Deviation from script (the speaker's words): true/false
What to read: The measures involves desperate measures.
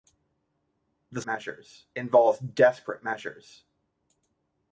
false